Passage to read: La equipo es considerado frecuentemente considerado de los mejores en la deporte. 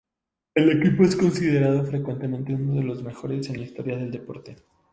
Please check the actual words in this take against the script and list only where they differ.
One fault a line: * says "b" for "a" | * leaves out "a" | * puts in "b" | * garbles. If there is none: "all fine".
* says "El" for "La"
* says "uno" for "considerado"
* puts in "historia del"